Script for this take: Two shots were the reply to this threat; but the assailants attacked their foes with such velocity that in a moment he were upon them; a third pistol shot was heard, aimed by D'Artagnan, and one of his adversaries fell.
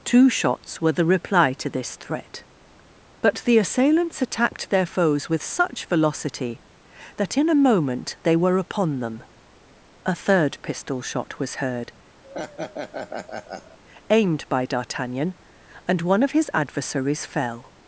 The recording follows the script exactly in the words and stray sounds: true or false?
false